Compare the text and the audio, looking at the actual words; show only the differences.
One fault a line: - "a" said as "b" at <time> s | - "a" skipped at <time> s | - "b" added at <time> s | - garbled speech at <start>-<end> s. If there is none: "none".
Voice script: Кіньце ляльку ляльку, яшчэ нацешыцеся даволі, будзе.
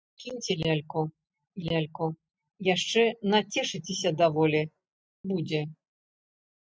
none